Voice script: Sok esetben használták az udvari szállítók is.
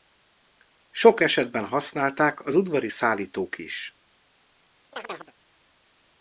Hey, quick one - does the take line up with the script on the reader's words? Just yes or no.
yes